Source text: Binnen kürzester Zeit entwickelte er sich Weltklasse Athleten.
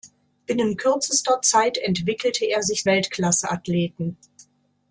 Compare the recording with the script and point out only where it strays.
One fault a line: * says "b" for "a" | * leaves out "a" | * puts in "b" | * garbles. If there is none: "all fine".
all fine